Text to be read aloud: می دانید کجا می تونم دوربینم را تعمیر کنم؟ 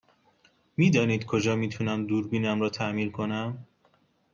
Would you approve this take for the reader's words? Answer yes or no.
yes